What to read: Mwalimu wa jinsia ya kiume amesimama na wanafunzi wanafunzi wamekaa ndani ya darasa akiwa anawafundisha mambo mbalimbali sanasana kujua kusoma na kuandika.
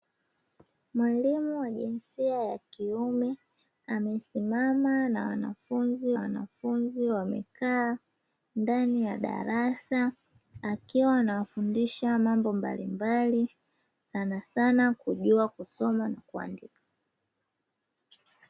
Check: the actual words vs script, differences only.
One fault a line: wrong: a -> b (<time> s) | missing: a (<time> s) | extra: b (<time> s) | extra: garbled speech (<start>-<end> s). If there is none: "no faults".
no faults